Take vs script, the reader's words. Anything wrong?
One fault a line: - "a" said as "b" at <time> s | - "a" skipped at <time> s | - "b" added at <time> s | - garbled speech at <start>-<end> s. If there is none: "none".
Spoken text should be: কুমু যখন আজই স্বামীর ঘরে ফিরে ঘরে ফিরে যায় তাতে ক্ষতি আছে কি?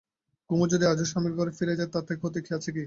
- "যখন" said as "যদি" at 0.7 s
- "ঘরে ফিরে" skipped at 1.8 s